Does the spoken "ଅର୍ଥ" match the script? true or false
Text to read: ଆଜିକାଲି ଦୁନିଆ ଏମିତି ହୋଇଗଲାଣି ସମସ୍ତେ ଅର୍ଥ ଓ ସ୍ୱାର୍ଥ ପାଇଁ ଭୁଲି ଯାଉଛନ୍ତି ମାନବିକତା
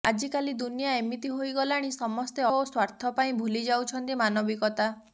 false